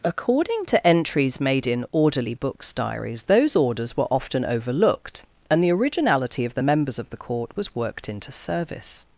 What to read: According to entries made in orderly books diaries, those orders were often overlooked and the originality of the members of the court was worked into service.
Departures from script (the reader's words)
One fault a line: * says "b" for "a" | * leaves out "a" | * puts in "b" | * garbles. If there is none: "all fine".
all fine